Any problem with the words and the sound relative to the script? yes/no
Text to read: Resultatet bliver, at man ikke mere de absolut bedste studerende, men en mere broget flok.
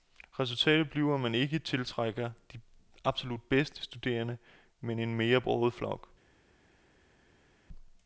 yes